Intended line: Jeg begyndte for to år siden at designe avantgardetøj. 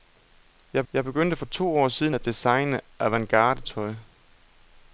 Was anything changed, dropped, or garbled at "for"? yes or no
no